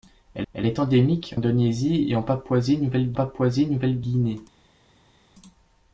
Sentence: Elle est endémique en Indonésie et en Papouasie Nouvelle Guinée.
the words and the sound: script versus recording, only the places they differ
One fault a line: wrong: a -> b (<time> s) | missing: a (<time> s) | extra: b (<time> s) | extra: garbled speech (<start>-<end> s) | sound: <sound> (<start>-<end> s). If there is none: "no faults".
extra: elle (0.5 s)
missing: en (1.4 s)
extra: Papouasie Nouvelle (3.1 s)